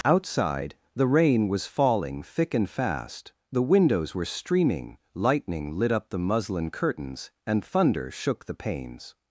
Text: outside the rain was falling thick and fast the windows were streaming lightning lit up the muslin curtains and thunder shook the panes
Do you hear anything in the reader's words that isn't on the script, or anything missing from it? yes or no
no